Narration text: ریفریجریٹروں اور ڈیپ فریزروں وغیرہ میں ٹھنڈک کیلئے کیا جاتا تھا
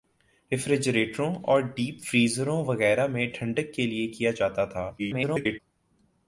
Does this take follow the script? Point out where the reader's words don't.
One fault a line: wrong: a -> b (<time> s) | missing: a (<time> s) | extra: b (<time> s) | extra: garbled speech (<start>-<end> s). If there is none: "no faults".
extra: garbled speech (5.0-5.6 s)